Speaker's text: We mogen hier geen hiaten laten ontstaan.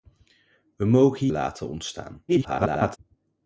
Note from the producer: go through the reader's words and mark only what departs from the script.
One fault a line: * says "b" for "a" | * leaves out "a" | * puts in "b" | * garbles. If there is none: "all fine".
* leaves out "hier geen hiaten"
* garbles